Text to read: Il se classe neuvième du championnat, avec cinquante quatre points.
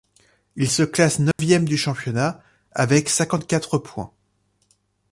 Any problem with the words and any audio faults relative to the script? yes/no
yes